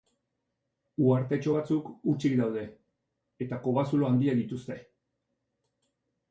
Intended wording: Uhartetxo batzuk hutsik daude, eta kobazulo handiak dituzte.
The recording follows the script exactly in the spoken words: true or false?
true